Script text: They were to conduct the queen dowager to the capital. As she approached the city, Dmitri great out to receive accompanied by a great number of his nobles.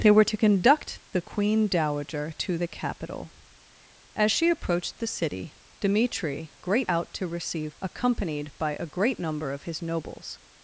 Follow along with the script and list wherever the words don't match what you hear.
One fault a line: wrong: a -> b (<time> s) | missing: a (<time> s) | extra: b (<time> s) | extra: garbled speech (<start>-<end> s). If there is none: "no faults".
no faults